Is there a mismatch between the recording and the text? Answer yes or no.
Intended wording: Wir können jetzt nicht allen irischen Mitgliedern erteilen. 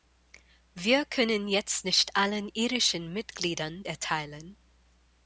no